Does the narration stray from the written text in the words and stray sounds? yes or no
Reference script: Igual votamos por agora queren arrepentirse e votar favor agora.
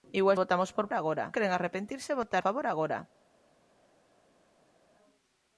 no